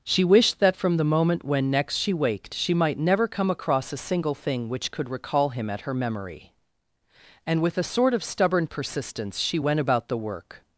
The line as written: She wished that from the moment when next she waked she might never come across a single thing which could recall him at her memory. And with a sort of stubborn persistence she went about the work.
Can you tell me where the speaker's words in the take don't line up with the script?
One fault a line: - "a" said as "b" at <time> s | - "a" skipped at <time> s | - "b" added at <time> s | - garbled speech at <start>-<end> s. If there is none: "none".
none